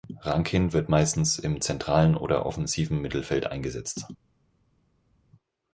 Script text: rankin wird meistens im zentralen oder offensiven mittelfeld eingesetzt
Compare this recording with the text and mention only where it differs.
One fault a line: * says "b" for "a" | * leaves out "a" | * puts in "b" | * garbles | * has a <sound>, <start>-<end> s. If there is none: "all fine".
all fine